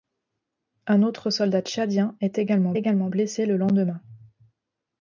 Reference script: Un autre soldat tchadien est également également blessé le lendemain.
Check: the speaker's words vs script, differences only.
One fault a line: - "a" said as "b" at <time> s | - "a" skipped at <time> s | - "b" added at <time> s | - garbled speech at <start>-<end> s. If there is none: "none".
none